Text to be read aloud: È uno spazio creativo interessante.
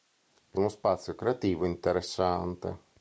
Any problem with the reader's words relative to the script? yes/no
no